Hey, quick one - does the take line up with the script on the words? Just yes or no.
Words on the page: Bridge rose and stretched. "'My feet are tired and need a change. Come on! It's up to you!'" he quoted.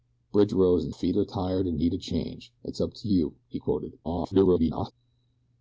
no